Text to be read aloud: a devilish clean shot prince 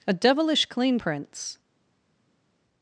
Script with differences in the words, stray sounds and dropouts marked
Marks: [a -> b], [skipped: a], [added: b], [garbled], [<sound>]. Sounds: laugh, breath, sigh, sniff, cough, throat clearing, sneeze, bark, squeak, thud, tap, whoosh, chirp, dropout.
a devilish clean [skipped: shot] prince